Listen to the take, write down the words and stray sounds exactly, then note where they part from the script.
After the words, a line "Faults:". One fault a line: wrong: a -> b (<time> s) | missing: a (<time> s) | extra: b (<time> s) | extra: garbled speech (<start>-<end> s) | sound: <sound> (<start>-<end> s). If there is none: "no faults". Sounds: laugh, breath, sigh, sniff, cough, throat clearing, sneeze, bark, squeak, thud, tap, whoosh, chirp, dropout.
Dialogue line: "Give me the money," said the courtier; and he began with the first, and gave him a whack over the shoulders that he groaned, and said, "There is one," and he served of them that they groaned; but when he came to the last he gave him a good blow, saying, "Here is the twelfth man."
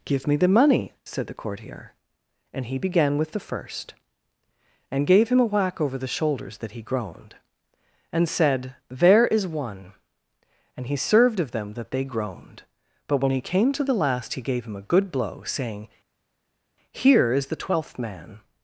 "Give me the money," said the courtier; and he began with the first, and gave him a whack over the shoulders that he groaned, and said, "There is one," and he served of them that they groaned; but when he came to the last he gave him a good blow, saying, "Here is the twelfth man."
Faults:
no faults